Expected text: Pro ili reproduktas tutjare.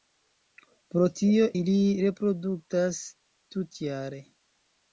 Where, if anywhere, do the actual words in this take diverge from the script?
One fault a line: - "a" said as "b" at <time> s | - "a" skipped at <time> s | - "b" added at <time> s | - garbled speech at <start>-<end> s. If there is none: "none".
- "tio" added at 1.2 s